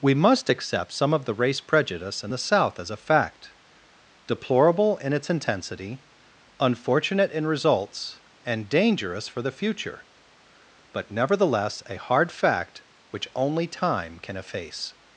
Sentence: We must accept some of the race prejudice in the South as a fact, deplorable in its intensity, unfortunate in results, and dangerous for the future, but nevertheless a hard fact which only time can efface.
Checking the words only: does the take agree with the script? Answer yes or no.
yes